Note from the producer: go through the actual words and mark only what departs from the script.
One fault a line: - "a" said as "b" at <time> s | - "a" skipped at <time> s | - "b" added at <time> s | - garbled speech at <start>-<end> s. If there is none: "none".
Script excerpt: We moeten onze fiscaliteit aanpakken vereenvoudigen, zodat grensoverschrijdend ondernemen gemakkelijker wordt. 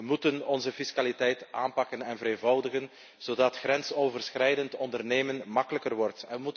- "en" added at 2.0 s